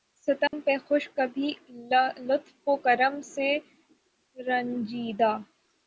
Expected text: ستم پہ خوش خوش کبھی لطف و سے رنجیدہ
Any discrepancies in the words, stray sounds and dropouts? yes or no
yes